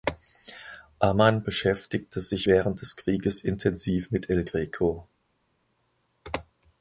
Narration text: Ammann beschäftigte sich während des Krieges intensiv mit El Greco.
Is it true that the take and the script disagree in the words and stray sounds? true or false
false